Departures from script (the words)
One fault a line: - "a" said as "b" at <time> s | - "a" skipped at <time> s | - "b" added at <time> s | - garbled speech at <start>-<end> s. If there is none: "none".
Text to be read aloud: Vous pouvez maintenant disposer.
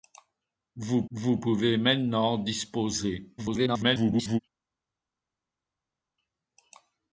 - "vous" added at 1.1 s
- garbled speech at 3.4-4.4 s